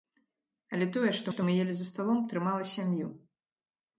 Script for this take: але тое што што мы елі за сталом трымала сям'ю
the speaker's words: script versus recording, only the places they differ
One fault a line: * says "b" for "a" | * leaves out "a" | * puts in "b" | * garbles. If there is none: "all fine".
all fine